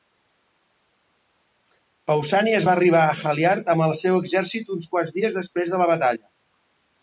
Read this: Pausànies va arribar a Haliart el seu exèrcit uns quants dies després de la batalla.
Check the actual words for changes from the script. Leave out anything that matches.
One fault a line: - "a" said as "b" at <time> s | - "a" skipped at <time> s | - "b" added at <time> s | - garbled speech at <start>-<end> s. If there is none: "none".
- "amb" added at 3.8 s